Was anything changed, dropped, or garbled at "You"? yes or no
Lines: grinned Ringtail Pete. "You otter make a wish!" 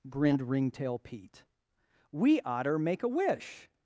yes